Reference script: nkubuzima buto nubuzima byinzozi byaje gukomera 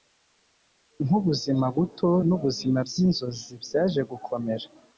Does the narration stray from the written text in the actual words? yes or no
no